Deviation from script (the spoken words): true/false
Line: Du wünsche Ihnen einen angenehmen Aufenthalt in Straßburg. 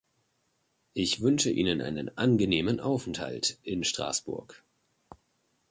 true